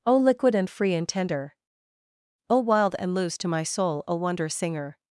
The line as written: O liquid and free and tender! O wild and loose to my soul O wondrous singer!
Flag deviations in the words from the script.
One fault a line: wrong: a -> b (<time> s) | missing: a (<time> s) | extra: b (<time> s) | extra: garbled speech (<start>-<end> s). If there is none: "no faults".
no faults